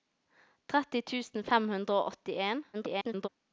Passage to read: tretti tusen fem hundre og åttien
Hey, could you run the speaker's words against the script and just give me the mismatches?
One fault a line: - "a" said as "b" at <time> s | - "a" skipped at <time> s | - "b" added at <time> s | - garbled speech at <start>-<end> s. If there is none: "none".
- garbled speech at 2.7-3.3 s